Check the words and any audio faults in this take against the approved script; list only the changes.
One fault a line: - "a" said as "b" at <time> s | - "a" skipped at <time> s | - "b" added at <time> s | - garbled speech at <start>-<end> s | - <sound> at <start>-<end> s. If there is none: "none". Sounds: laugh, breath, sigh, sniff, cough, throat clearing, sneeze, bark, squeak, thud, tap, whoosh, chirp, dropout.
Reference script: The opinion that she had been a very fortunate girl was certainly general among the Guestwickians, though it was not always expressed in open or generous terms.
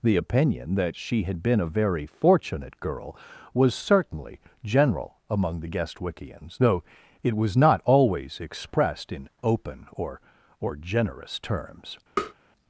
- "or" added at 10.6 s
- tap at 12.2-12.3 s